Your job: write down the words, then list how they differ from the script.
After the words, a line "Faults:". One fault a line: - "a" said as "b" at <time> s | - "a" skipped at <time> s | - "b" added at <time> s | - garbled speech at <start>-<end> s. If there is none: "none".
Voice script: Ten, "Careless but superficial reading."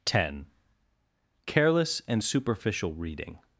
Ten, "Careless and superficial reading."
Faults:
- "but" said as "and" at 2.1 s